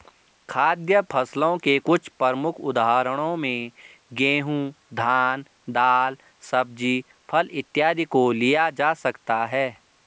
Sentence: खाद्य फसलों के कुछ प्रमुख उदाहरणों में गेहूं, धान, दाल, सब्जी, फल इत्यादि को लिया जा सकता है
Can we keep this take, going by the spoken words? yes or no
yes